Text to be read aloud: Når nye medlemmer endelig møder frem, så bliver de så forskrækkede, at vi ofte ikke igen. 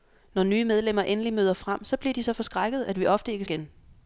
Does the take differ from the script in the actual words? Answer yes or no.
no